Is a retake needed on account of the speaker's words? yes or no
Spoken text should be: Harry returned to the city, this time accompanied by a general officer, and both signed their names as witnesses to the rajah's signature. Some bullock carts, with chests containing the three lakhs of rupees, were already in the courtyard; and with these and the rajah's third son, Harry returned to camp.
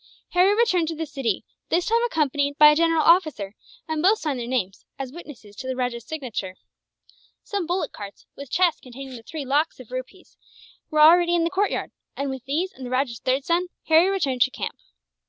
no